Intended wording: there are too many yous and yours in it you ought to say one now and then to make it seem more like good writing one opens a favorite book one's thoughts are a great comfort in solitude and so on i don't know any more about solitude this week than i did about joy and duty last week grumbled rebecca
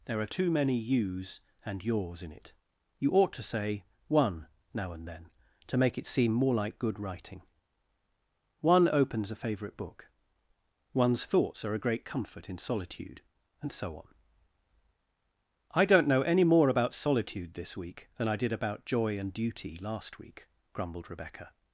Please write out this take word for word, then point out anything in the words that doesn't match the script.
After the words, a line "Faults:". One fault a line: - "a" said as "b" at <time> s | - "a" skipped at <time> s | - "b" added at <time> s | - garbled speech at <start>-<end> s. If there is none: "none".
there are too many yous and yours in it you ought to say one now and then to make it seem more like good writing one opens a favorite book one's thoughts are a great comfort in solitude and so on i don't know any more about solitude this week than i did about joy and duty last week grumbled rebecca
Faults:
none